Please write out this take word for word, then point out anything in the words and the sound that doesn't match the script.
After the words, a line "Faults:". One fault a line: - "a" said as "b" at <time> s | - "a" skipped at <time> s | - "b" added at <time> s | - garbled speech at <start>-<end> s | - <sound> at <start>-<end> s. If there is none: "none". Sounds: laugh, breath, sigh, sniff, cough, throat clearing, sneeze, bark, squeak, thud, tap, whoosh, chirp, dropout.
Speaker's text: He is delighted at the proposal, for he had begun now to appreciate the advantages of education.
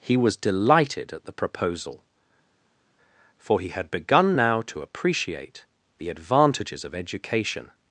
He was delighted at the proposal, for he had begun now to appreciate the advantages of education.
Faults:
- "is" said as "was" at 0.2 s